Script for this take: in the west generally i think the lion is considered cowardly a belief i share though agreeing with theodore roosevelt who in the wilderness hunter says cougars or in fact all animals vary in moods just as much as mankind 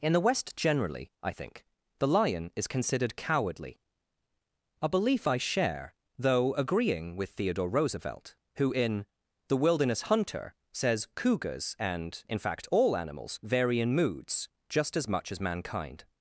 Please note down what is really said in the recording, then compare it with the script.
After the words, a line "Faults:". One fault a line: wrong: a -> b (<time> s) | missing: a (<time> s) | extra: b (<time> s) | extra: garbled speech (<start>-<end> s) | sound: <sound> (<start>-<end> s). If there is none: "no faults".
in the west generally i think the lion is considered cowardly a belief i share though agreeing with theodore roosevelt who in the wilderness hunter says cougars and in fact all animals vary in moods just as much as mankind
Faults:
wrong: or -> and (11.8 s)